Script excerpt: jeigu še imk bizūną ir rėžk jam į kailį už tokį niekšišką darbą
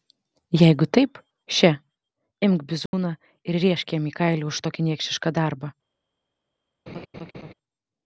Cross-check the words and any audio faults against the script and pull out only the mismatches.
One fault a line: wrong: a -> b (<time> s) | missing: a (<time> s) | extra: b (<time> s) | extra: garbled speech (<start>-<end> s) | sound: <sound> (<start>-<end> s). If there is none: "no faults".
extra: taip (1.0 s)
sound: dropout (2.9-2.9 s)
sound: laugh (6.9-7.5 s)